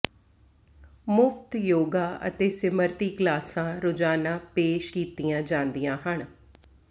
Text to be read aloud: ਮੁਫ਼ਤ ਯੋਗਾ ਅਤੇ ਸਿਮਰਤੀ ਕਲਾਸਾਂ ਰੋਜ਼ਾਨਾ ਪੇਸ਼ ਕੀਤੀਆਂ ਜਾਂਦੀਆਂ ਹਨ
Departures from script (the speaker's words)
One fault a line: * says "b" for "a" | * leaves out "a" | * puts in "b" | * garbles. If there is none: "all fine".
all fine